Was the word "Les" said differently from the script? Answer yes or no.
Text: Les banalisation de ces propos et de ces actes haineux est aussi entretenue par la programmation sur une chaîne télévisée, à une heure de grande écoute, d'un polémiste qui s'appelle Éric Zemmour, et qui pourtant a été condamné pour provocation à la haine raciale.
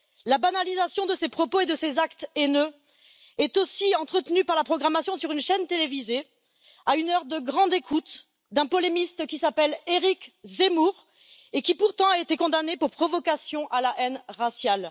yes